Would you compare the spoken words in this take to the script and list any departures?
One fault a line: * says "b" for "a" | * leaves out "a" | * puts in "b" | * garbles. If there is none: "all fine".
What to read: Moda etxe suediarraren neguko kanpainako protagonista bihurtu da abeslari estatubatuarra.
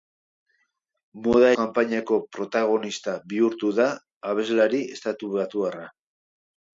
* leaves out "etxe suediarraren neguko"